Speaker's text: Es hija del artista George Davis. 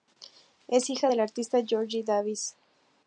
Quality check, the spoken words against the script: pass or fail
pass